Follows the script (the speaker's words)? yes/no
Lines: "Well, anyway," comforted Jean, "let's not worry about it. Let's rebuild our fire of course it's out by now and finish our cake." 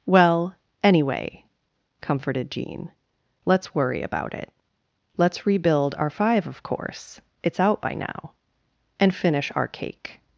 no